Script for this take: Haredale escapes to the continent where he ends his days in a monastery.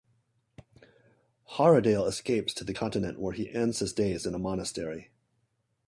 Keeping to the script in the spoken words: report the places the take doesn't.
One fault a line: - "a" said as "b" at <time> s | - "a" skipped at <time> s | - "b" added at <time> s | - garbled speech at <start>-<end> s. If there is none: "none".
none